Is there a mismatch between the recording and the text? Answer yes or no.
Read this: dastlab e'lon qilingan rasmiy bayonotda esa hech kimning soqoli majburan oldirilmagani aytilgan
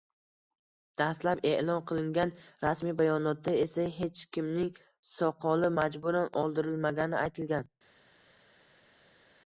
no